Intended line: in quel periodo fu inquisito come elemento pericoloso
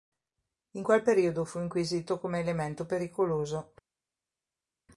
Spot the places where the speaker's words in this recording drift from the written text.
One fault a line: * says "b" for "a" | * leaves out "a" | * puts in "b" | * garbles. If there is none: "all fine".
all fine